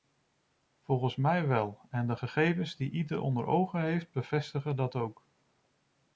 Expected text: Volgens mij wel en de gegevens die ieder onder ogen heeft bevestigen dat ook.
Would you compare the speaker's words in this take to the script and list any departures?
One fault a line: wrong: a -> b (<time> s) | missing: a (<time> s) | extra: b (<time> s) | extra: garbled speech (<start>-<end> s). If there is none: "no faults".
no faults